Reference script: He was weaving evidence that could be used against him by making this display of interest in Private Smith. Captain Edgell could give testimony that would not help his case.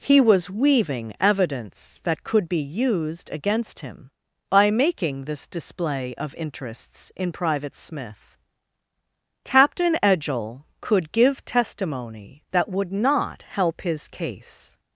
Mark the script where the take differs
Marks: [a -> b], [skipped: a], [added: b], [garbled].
He was weaving evidence that could be used against him by making this display of [interest -> interests] in Private Smith. Captain Edgell could give testimony that would not help his case.